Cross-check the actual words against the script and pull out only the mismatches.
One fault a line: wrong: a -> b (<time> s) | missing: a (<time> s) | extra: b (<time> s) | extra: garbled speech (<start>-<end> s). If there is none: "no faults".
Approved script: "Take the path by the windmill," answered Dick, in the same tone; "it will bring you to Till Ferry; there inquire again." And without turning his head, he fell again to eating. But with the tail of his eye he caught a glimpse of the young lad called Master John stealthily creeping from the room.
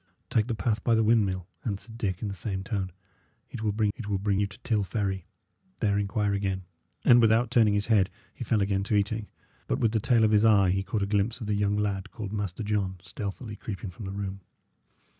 extra: it will bring (4.0 s)